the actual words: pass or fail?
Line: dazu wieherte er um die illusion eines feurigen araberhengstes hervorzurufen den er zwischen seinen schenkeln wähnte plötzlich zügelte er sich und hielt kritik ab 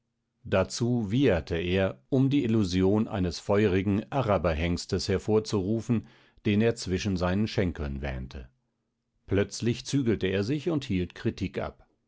pass